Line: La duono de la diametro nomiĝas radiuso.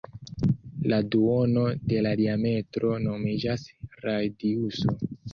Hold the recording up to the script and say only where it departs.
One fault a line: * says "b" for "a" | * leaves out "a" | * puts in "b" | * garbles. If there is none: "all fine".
all fine